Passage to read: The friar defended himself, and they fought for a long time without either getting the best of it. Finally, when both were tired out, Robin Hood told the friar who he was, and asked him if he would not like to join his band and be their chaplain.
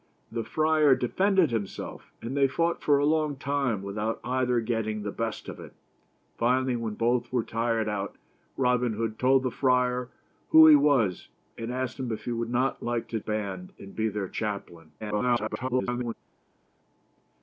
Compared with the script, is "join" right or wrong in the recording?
wrong